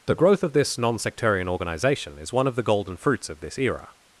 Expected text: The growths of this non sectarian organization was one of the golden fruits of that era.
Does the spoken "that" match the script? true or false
false